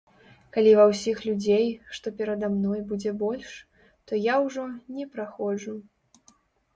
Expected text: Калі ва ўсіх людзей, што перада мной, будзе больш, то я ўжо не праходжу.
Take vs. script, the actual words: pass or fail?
pass